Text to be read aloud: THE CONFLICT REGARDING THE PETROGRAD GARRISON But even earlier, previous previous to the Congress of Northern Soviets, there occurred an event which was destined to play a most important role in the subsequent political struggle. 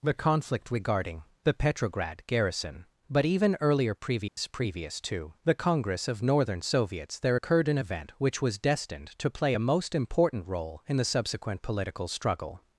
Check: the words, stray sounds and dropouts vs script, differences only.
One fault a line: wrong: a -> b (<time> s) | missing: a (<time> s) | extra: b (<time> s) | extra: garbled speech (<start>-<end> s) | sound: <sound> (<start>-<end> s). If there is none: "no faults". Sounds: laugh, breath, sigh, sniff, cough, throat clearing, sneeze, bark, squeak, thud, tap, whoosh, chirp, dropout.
sound: dropout (4.3-4.4 s)